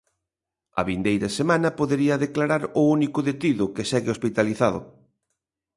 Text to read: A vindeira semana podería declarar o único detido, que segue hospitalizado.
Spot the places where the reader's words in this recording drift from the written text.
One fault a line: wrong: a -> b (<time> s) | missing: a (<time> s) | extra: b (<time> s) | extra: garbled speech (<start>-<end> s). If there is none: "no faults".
no faults